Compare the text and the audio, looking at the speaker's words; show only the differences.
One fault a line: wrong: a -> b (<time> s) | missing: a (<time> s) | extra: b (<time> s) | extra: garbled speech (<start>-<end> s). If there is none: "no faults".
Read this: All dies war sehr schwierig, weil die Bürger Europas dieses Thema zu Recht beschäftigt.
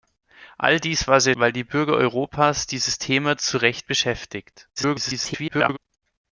missing: schwierig (1.4 s)
extra: garbled speech (4.8-5.8 s)